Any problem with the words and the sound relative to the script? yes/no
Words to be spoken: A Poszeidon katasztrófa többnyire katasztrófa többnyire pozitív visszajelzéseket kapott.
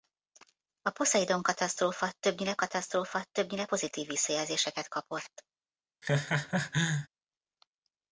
yes